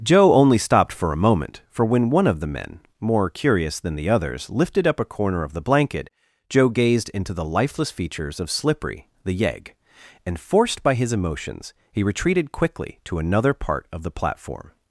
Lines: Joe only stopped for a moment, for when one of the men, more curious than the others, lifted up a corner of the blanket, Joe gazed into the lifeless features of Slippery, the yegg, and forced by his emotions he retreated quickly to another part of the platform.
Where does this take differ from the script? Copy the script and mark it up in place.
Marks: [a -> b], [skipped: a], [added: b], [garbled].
Joe only stopped for a moment, for when one of the men, more curious than the others, lifted up a corner of the blanket, Joe gazed into the lifeless features of Slippery, the yegg, and forced by his emotions he retreated quickly to another part of the platform.